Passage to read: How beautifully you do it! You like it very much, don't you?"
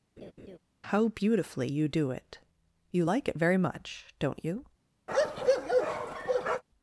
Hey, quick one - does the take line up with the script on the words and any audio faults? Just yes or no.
no